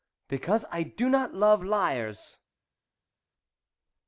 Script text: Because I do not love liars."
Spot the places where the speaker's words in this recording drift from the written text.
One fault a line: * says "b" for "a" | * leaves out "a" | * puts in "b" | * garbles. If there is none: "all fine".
all fine